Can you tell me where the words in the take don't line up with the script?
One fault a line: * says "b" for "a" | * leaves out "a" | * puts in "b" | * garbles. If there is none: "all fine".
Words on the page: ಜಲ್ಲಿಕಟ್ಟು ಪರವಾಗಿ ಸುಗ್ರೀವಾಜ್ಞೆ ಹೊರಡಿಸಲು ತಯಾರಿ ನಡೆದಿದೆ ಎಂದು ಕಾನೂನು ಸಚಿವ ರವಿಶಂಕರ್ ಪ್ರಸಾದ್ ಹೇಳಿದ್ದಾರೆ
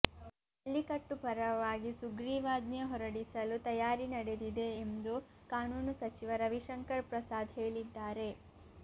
all fine